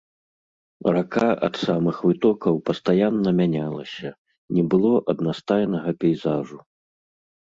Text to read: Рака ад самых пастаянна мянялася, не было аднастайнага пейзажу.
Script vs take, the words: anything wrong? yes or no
yes